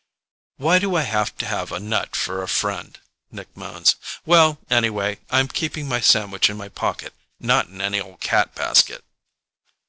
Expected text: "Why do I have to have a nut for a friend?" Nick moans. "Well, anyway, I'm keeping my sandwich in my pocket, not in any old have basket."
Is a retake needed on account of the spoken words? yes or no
yes